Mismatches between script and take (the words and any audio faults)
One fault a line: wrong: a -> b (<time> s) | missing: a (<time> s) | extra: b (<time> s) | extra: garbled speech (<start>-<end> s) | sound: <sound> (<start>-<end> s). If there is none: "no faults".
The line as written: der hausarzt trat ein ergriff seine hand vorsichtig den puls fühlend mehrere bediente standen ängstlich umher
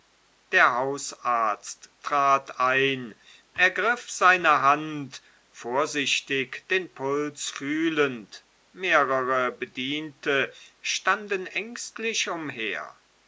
no faults